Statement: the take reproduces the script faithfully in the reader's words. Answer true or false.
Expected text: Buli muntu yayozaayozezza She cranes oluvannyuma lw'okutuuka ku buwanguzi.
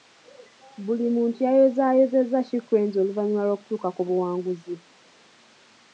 true